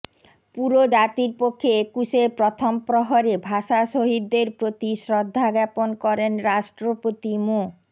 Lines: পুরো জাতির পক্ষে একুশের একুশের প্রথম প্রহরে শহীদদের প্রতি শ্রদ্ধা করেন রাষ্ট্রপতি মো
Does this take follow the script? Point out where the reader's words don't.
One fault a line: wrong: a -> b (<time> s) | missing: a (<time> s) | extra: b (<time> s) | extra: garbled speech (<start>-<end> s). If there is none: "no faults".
missing: একুশের (2.3 s)
extra: ভাষা (3.5 s)
extra: জ্ঞাপন (5.6 s)